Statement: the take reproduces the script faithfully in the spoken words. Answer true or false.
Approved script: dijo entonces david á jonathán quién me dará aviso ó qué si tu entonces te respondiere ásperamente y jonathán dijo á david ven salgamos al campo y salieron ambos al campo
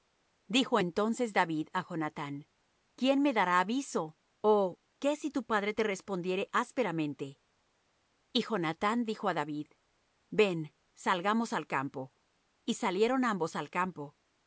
false